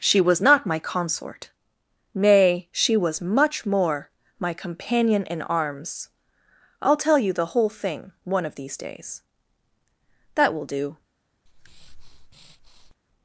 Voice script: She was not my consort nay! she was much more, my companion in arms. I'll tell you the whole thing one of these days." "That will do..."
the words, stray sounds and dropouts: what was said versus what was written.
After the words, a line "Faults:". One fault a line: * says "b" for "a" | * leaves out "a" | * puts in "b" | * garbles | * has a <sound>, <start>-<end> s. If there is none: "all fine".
She was not my consort nay! she was much more, my companion in arms. I'll tell you the whole thing one of these days." "That will do..."
Faults:
* has a breath, 11.5-12.9 s